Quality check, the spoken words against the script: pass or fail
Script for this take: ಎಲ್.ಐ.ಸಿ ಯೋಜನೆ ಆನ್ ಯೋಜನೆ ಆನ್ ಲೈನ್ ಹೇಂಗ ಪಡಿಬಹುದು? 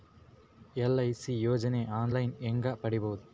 fail